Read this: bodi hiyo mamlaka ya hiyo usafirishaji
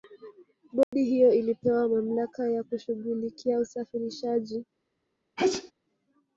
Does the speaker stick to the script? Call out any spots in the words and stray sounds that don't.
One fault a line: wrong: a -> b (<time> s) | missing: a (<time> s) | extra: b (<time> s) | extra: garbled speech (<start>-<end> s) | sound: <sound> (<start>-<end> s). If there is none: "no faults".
sound: dropout (0.8-0.9 s)
extra: ilipewa (1.3 s)
wrong: hiyo -> kushughulikia (2.6 s)
sound: sneeze (5.4-5.7 s)